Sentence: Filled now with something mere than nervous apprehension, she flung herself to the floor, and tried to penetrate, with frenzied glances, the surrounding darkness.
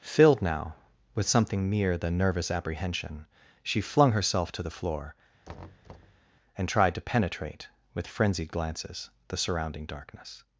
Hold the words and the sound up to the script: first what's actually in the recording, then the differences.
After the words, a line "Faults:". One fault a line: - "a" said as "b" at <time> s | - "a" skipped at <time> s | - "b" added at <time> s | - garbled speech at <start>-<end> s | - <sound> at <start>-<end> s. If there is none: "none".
Filled now with something mere than nervous apprehension, she flung herself to the floor, and tried to penetrate, with frenzied glances, the surrounding darkness.
Faults:
- thud at 5.5-6.2 s